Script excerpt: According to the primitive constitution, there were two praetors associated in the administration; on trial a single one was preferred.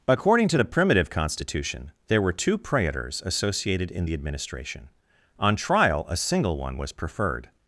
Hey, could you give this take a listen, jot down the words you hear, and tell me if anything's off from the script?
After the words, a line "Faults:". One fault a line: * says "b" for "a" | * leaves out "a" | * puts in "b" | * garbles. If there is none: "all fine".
According to the primitive constitution, there were two praetors associated in the administration; on trial a single one was preferred.
Faults:
all fine